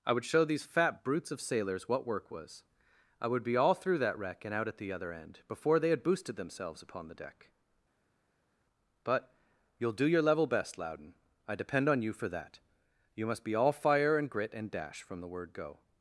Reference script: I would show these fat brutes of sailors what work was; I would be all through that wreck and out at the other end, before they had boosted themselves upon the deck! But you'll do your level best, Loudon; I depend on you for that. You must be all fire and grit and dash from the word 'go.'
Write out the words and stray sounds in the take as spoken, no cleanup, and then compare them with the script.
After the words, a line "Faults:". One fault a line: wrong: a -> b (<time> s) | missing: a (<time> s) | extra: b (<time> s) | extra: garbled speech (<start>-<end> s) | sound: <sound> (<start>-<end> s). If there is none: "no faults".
I would show these fat brutes of sailors what work was; I would be all through that wreck and out at the other end, before they had boosted themselves upon the deck! But you'll do your level best, Loudon; I depend on you for that. You must be all fire and grit and dash from the word 'go.'
Faults:
no faults